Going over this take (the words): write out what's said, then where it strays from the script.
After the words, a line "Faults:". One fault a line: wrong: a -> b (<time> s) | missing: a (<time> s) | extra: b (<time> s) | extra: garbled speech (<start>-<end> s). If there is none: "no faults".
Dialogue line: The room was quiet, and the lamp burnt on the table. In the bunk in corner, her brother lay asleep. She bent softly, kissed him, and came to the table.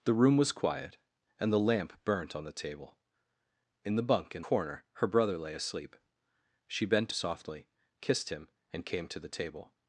The room was quiet, and the lamp burnt on the table. In the bunk in corner, her brother lay asleep. She bent softly, kissed him, and came to the table.
Faults:
no faults